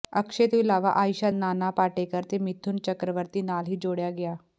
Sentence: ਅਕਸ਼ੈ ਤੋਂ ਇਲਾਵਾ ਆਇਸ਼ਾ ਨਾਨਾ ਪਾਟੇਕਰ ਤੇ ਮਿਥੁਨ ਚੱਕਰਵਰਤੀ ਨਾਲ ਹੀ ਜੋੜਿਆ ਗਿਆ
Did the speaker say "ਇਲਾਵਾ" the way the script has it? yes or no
yes